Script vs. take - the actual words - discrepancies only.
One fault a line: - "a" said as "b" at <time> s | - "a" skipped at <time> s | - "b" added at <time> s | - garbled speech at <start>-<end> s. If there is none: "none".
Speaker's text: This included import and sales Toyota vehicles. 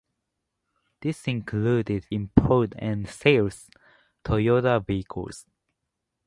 none